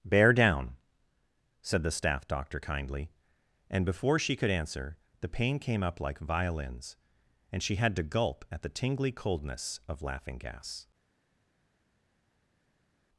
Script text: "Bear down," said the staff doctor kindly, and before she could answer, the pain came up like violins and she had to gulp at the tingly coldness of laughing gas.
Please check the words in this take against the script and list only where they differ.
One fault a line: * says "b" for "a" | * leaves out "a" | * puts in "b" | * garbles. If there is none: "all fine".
all fine